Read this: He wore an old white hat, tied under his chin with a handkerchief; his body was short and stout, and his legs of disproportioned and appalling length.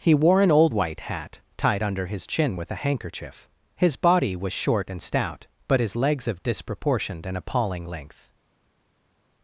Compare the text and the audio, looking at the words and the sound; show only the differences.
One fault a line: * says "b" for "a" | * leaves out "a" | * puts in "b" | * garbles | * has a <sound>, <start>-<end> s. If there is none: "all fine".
* says "but" for "and"